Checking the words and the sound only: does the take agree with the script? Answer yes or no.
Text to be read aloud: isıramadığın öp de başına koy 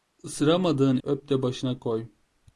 yes